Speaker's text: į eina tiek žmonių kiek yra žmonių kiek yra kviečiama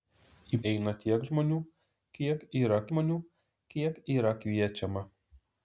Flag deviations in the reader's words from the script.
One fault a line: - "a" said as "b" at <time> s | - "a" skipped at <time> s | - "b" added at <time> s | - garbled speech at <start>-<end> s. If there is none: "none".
none